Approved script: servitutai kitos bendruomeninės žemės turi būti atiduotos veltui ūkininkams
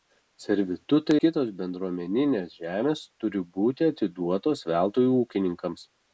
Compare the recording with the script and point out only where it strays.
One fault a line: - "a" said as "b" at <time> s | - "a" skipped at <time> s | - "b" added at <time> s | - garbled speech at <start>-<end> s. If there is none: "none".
none